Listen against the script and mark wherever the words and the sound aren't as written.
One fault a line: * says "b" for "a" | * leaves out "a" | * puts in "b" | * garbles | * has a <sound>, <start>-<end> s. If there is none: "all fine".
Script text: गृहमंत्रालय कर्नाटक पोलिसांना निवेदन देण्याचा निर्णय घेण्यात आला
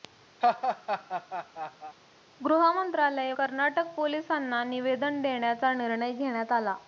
* has a laugh, 0.4-2.0 s